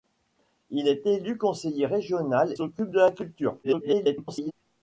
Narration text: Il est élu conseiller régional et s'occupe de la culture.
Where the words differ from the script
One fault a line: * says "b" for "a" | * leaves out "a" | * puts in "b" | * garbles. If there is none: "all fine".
* leaves out "et"
* garbles